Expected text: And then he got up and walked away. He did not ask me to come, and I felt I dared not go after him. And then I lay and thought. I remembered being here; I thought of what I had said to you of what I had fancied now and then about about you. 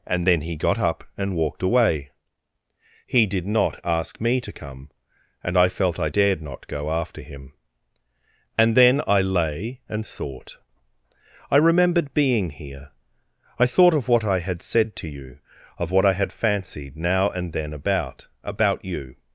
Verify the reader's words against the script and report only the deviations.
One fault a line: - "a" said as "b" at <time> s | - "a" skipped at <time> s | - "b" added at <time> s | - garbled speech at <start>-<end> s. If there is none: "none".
none